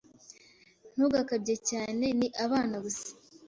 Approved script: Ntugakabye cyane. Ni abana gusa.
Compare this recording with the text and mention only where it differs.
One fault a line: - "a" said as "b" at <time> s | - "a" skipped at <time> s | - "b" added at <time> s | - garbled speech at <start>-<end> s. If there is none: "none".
none